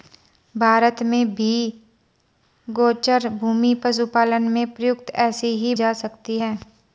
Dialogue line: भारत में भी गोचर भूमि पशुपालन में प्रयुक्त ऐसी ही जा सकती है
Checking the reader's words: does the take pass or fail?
pass